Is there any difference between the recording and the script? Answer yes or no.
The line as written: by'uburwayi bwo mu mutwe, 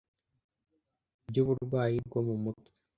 no